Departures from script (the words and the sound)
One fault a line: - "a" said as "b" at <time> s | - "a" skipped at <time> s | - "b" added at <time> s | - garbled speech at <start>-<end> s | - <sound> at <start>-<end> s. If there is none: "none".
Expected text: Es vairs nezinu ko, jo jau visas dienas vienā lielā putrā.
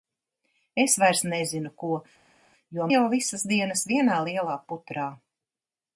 none